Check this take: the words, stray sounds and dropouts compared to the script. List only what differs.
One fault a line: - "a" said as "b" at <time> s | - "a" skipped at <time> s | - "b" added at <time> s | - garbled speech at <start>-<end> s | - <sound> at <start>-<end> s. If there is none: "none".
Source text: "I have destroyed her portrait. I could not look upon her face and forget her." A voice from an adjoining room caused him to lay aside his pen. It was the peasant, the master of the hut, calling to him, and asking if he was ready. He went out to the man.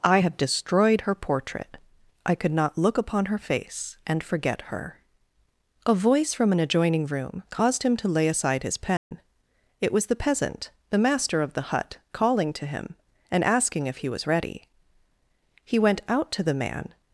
- dropout at 9.0-9.1 s